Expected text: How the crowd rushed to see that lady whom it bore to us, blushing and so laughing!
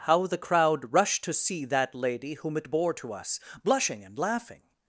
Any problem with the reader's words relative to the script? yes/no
yes